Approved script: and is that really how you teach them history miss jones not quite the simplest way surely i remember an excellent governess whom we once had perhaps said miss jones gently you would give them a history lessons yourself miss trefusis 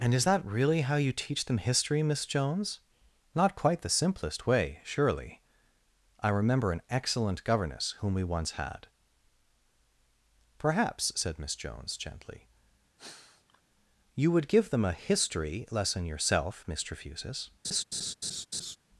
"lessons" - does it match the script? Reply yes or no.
no